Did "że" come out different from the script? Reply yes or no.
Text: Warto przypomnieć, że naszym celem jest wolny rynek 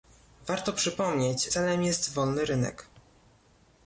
yes